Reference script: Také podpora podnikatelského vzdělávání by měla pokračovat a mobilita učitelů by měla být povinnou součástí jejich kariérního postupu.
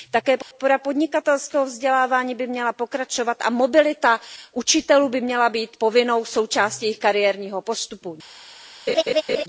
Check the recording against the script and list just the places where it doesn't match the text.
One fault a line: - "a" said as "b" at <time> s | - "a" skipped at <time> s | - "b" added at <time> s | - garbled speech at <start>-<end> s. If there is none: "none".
none